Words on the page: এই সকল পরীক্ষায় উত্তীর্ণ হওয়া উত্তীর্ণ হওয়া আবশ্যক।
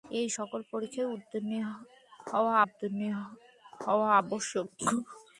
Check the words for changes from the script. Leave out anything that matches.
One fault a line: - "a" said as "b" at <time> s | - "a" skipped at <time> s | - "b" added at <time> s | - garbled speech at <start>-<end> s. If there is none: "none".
none